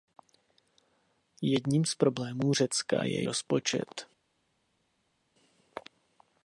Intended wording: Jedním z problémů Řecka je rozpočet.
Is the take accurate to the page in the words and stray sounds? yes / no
yes